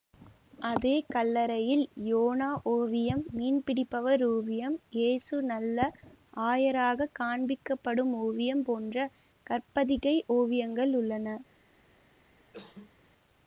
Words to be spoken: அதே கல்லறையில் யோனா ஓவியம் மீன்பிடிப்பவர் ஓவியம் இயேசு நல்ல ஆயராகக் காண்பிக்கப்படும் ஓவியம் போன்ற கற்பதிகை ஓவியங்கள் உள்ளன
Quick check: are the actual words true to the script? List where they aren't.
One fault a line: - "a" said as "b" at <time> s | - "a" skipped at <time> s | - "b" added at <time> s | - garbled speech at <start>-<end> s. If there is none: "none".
none